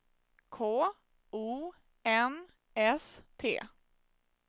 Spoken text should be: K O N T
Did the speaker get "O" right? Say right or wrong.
right